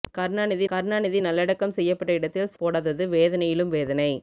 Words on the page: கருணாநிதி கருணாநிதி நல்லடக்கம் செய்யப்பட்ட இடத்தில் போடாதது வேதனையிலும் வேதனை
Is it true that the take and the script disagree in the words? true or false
false